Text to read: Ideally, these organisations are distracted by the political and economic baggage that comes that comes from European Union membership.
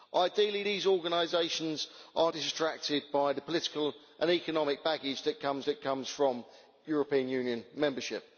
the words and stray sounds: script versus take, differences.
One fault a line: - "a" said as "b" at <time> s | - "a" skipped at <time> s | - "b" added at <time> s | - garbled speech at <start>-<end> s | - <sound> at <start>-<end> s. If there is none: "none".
none